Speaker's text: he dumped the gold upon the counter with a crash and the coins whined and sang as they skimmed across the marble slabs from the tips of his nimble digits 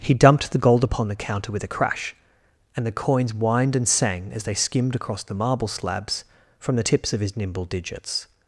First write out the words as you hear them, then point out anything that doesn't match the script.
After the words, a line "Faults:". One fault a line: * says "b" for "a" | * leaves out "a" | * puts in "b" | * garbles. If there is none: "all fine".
he dumped the gold upon the counter with a crash and the coins whined and sang as they skimmed across the marble slabs from the tips of his nimble digits
Faults:
all fine